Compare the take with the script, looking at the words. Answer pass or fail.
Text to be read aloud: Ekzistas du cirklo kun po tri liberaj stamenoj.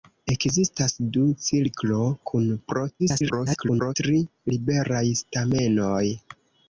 fail